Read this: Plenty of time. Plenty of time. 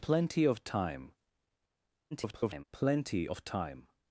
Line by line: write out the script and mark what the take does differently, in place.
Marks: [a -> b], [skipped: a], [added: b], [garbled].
Plenty of time. [garbled] Plenty of time.